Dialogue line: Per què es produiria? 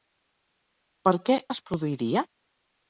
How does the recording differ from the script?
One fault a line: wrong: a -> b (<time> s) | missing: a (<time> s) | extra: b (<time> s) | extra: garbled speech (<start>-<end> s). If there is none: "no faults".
no faults